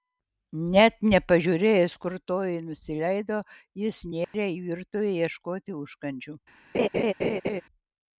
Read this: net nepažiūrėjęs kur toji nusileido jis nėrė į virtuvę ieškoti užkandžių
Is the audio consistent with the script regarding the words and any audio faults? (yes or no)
no